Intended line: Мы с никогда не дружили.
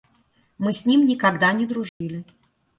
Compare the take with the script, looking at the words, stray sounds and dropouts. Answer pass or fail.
fail